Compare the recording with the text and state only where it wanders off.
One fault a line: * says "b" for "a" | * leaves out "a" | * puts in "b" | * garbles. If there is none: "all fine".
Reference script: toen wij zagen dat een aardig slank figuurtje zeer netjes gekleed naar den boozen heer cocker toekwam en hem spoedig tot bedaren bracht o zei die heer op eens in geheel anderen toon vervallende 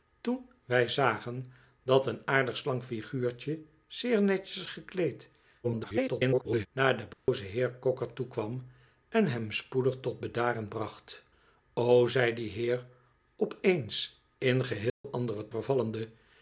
* garbles
* leaves out "toon"